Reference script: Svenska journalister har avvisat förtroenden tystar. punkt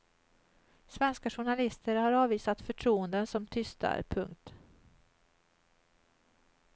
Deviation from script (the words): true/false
true